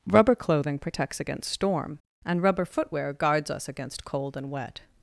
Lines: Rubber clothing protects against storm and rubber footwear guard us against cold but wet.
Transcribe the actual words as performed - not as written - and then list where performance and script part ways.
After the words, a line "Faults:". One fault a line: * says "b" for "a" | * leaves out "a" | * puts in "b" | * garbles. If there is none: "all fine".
Rubber clothing protects against storm and rubber footwear guards us against cold and wet.
Faults:
* says "guards" for "guard"
* says "and" for "but"